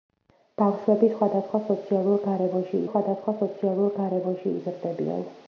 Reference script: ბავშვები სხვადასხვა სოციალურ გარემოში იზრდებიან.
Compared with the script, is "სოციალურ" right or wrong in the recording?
right